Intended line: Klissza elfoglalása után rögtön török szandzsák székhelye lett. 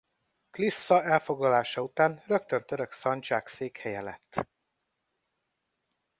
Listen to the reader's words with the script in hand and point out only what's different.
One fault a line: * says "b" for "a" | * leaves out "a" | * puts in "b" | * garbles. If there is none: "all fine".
all fine